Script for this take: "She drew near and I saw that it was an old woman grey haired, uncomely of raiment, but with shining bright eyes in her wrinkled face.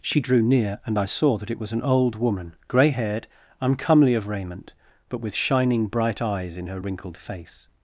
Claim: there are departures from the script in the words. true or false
false